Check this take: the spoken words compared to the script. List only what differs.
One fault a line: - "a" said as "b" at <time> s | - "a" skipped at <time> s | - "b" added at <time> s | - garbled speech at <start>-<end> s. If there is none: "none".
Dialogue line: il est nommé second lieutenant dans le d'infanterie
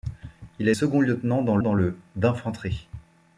- "nommé" skipped at 0.7 s
- "dans" added at 1.6 s